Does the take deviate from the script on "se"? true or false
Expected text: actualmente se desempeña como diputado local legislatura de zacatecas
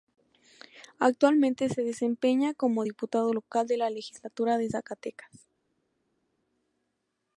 false